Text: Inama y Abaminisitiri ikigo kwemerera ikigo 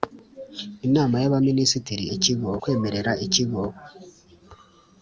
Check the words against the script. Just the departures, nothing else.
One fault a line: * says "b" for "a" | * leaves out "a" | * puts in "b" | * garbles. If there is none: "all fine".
all fine